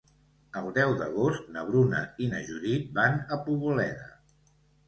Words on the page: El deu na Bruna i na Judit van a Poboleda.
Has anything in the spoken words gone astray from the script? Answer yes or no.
yes